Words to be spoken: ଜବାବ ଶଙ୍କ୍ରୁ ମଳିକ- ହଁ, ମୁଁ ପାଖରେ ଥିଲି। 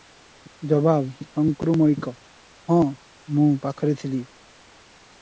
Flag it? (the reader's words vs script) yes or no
no